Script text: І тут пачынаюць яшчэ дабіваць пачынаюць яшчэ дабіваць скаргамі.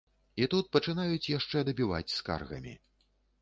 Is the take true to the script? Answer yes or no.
no